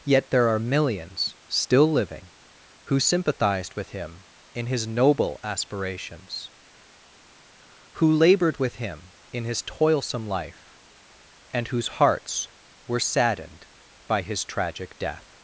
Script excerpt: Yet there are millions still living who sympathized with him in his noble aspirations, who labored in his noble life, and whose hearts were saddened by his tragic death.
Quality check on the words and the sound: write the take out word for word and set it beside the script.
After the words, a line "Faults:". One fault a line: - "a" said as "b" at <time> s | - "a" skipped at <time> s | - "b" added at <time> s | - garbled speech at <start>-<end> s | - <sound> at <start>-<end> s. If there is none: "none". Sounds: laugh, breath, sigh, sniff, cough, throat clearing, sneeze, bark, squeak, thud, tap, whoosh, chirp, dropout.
Yet there are millions still living who sympathized with him in his noble aspirations, who labored with him in his toilsome life, and whose hearts were saddened by his tragic death.
Faults:
- "with him" added at 8.6 s
- "noble" said as "toilsome" at 9.6 s